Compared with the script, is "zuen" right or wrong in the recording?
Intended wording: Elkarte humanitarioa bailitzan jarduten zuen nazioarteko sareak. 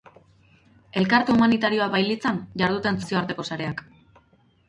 wrong